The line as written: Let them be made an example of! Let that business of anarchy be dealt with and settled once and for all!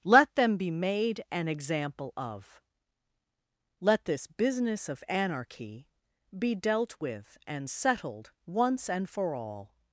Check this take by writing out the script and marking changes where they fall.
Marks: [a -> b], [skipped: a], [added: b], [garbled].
Let them be made an example of! Let [that -> this] business of anarchy be dealt with and settled once and for all!